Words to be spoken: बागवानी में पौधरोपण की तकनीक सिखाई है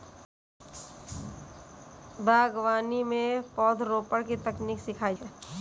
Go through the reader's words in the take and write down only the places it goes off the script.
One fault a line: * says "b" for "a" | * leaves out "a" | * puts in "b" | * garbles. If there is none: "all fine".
all fine